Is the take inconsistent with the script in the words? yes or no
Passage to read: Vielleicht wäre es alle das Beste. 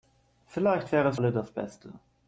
no